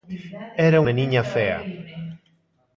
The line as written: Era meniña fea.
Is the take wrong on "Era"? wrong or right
right